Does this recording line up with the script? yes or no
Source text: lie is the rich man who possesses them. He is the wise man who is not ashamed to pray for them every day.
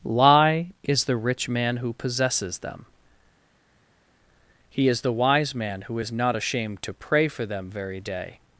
no